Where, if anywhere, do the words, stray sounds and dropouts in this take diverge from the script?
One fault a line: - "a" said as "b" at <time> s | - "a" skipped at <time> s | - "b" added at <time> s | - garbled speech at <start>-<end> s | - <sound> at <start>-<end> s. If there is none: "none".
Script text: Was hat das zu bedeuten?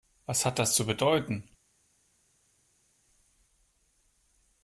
none